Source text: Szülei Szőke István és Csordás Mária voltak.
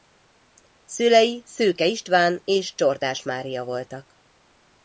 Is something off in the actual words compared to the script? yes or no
no